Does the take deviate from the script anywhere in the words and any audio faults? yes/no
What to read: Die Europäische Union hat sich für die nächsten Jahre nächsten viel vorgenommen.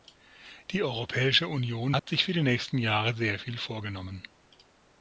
yes